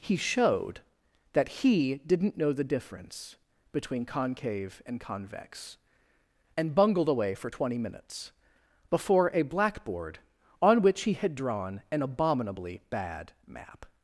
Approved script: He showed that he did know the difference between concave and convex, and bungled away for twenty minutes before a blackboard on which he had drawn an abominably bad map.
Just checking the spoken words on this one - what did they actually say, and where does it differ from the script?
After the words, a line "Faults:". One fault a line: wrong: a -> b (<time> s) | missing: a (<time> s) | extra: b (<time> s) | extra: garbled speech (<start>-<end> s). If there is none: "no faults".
He showed that he didn't know the difference between concave and convex, and bungled away for twenty minutes before a blackboard on which he had drawn an abominably bad map.
Faults:
wrong: did -> didn't (2.1 s)